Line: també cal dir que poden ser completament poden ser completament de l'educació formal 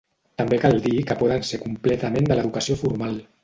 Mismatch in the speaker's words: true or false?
true